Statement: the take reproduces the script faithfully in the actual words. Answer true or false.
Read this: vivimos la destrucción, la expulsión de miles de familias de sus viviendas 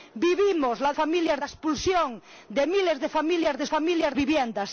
false